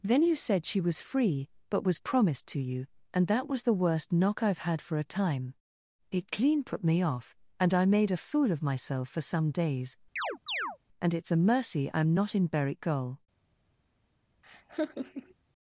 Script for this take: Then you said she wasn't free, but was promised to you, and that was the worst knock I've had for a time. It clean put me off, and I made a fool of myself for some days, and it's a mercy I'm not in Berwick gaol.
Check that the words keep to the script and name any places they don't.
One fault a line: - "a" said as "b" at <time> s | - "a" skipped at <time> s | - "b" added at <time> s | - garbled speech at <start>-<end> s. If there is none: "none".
- "wasn't" said as "was" at 0.8 s